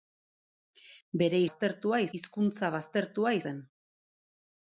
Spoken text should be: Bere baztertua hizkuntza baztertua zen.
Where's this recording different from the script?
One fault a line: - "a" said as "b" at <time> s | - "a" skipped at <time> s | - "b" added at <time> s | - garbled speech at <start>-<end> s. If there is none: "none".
none